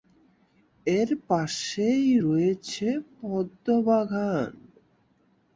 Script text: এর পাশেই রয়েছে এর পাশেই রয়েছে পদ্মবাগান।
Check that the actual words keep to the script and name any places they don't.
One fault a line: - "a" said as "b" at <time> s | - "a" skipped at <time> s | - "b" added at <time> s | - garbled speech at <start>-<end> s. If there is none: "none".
- "এর পাশেই রয়েছে" skipped at 2.9 s